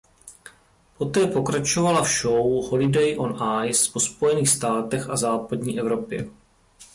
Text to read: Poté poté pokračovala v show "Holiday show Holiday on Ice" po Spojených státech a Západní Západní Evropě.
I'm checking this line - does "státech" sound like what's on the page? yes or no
yes